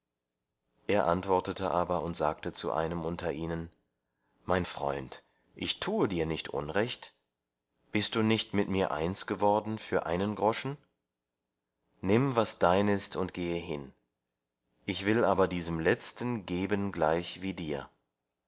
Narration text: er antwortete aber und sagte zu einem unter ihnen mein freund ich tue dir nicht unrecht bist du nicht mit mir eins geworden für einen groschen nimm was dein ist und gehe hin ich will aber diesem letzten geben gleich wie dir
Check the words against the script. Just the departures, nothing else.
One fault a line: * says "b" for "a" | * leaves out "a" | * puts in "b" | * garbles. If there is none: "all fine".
all fine